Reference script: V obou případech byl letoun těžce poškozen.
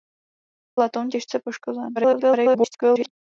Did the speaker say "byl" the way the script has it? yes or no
no